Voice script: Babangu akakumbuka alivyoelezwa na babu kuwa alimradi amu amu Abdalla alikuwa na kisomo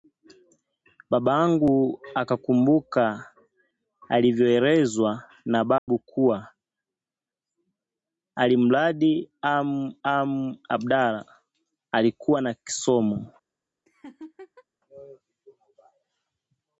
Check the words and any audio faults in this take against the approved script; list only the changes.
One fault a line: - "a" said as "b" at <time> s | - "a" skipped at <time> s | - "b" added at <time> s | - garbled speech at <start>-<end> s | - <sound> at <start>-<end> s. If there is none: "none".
- dropout at 5.8-5.9 s
- laugh at 13.9-14.6 s